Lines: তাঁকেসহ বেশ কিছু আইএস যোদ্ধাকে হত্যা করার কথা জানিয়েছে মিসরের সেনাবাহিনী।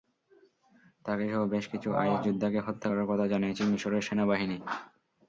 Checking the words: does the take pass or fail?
pass